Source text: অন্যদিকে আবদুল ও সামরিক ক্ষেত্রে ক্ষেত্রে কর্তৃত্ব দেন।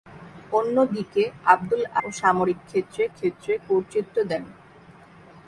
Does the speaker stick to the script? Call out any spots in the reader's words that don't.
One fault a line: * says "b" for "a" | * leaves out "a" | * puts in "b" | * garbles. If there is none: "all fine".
all fine